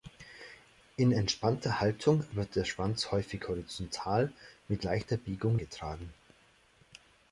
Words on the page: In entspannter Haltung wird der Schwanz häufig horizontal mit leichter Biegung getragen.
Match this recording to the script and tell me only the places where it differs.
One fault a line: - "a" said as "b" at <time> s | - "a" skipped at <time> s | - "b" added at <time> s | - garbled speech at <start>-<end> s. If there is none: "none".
none